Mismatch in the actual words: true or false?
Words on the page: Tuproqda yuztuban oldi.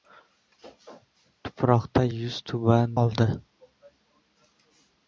false